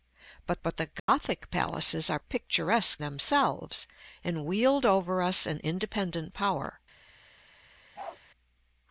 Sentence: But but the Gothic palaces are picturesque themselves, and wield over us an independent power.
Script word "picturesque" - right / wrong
right